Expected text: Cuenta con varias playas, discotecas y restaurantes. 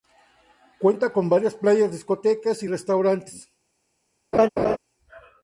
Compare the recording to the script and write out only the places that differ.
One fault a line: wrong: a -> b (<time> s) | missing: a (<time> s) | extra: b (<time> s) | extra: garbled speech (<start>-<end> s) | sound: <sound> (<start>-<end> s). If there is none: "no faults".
sound: laugh (4.3-4.8 s)